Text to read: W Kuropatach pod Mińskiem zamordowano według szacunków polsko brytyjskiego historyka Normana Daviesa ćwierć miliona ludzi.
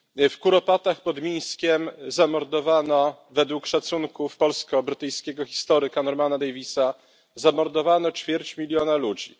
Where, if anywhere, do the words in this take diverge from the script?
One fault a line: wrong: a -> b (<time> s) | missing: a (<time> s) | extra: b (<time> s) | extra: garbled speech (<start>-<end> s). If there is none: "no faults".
no faults